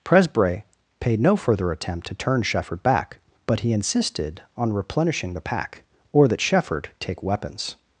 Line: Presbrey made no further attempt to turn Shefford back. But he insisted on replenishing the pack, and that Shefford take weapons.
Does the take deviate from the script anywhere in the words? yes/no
yes